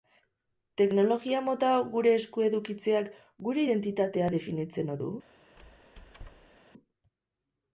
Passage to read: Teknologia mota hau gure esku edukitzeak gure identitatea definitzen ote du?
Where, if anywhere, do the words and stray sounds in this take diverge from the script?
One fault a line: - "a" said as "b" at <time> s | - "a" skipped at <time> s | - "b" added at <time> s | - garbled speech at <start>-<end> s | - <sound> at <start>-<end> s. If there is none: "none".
- "ote" skipped at 5.0 s
- squeak at 5.6-6.6 s